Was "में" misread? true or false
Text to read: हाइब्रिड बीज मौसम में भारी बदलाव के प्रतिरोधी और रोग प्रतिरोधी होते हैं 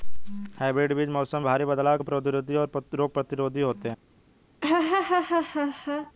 true